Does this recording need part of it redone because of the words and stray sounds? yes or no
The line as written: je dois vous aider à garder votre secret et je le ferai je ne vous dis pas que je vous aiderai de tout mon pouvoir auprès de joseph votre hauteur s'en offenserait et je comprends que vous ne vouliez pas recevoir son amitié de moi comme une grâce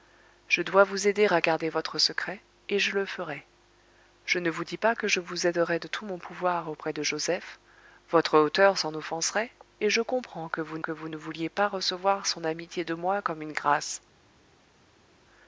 yes